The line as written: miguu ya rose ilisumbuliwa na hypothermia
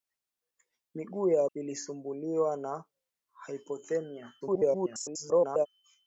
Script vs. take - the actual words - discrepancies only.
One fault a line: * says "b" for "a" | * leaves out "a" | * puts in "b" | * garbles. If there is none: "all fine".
* leaves out "rose"
* garbles